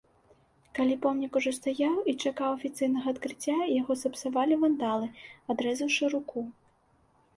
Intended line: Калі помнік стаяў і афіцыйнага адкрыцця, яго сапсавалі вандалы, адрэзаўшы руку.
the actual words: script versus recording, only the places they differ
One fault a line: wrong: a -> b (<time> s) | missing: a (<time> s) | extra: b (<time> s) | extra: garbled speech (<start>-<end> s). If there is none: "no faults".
extra: ужо (1.4 s)
extra: чакаў (2.2 s)